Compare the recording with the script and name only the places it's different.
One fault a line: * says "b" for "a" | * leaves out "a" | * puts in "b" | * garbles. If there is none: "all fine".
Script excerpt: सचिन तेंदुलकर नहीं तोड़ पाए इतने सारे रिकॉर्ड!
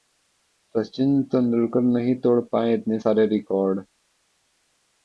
all fine